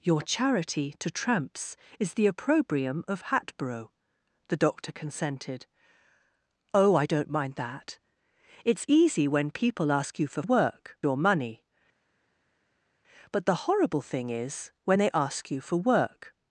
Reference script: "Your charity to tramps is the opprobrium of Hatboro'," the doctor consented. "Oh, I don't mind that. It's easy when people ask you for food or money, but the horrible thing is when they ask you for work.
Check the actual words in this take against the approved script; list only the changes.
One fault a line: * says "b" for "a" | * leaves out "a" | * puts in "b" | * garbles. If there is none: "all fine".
* says "work" for "food"